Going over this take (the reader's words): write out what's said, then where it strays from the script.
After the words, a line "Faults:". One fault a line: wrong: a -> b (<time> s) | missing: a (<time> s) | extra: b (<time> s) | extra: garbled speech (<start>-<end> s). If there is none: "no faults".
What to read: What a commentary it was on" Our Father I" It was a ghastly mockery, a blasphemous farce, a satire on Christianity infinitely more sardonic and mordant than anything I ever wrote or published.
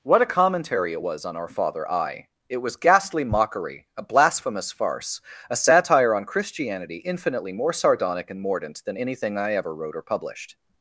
What a commentary it was on" Our Father I" It was ghastly mockery, a blasphemous farce, a satire on Christianity infinitely more sardonic and mordant than anything I ever wrote or published.
Faults:
missing: a (2.8 s)